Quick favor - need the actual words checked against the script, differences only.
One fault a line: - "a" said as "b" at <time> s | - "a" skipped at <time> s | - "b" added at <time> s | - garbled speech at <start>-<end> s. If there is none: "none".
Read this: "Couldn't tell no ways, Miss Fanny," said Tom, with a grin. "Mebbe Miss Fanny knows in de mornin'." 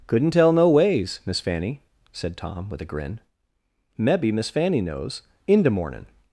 none